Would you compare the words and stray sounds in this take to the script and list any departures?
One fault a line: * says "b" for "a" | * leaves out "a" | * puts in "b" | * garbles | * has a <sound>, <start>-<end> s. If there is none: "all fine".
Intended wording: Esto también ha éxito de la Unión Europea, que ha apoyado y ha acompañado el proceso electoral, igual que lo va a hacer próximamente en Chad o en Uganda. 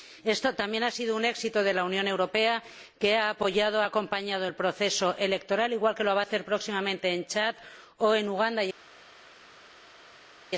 * puts in "sido un"